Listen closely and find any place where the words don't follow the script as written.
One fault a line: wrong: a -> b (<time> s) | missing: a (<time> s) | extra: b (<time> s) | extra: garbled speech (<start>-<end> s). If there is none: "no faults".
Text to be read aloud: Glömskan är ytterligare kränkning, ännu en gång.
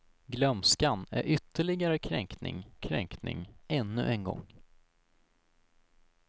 extra: kränkning (2.8 s)